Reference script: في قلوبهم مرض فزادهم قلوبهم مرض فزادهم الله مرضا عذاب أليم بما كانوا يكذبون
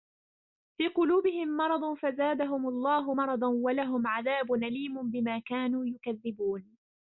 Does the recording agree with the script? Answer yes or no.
no